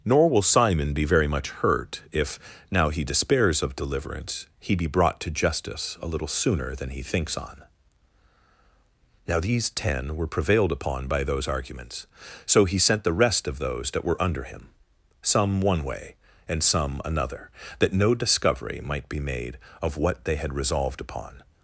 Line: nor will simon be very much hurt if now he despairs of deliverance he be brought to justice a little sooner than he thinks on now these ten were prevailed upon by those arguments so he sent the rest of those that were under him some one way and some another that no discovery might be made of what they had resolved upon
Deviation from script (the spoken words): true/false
false